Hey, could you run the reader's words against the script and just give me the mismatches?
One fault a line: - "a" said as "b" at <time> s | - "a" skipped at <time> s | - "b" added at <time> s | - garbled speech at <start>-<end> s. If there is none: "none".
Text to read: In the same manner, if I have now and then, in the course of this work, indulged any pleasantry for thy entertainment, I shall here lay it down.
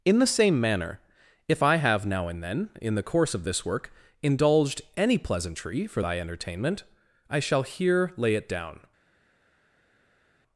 none